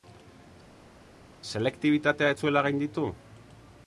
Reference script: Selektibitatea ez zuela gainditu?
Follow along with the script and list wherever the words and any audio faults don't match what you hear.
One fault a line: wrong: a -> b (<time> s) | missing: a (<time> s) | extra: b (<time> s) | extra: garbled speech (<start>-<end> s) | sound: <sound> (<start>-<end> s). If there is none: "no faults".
no faults